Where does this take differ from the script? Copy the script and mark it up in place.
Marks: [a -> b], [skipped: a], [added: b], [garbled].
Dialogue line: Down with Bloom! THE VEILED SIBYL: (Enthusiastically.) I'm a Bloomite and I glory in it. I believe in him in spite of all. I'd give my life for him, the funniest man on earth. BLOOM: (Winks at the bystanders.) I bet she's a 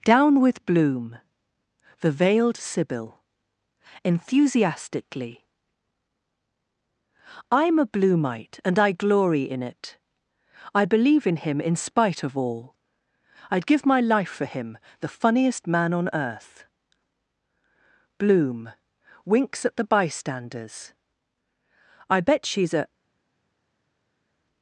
Down with Bloom! THE VEILED SIBYL: (Enthusiastically.) I'm a Bloomite and I glory in it. I believe in him in spite of all. I'd give my life for him, the funniest man on earth. BLOOM: (Winks at the bystanders.) I bet she's a